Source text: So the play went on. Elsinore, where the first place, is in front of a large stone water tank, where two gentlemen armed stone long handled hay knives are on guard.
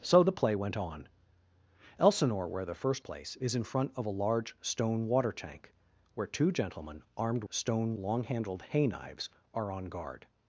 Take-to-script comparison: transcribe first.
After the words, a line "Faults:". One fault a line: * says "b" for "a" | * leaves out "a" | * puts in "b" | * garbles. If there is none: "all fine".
So the play went on. Elsinore, where the first place, is in front of a large stone water tank, where two gentlemen armed stone long handled hay knives are on guard.
Faults:
all fine